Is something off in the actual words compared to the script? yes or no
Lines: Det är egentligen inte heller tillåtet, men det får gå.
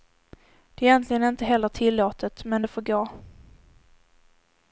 no